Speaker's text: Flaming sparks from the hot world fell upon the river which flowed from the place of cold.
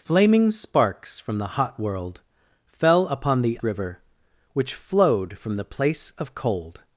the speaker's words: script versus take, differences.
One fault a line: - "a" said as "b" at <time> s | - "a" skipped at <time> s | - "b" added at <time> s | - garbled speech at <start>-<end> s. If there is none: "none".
none